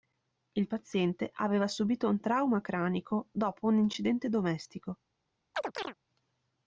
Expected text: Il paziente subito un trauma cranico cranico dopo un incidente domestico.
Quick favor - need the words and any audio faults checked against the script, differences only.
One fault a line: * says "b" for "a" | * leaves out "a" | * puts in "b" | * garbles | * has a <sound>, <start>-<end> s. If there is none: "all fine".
* puts in "aveva"
* leaves out "cranico"
* has a chirp, 5.5-5.9 s